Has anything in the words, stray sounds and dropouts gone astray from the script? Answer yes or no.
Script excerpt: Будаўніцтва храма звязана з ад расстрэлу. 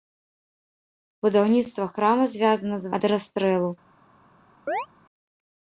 yes